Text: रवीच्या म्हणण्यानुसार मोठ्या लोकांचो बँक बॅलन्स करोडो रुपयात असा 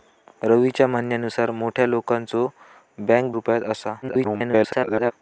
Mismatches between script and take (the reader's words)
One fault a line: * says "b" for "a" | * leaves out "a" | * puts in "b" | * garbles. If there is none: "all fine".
* leaves out "बॅलन्स करोडो"
* garbles